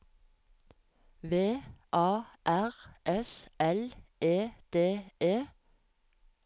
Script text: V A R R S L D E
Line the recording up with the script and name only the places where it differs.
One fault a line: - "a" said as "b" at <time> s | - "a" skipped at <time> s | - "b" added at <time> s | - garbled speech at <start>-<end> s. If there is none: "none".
- "R" skipped at 2.7 s
- "E" added at 4.2 s